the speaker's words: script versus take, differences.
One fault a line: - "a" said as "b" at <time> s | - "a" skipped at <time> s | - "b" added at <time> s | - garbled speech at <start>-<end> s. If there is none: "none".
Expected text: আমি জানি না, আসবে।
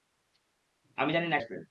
none